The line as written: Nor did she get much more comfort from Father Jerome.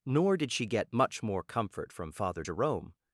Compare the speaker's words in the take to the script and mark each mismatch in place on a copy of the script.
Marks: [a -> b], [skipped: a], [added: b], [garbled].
Nor did she get much more comfort from Father Jerome.